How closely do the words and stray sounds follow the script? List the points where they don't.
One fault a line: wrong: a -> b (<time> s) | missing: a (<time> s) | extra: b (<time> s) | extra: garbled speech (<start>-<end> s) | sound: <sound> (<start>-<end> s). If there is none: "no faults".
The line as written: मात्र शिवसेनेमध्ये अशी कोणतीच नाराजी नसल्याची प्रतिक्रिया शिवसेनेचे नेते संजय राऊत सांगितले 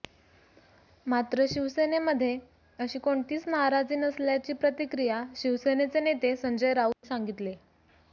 sound: dropout (6.9-7.0 s)